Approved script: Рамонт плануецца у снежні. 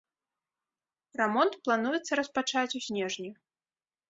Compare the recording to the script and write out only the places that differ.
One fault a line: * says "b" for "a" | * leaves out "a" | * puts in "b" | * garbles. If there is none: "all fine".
* puts in "распачаць"